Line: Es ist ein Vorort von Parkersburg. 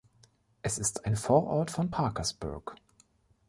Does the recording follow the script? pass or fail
pass